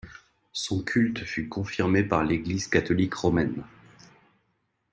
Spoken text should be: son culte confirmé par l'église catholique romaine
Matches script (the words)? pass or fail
fail